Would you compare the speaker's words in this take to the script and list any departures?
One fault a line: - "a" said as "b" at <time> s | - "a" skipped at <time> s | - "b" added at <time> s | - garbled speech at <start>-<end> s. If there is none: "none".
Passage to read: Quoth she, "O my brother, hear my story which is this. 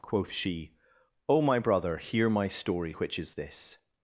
none